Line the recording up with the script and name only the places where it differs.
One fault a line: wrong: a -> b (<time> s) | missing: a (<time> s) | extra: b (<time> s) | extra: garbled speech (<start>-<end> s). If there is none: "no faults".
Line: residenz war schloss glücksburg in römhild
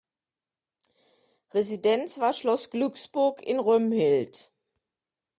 no faults